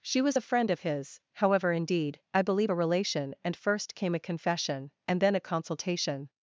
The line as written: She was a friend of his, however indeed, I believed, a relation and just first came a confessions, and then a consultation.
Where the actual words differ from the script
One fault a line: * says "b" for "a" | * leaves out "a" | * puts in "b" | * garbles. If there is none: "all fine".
* says "believe" for "believed"
* leaves out "just"
* says "confession" for "confessions"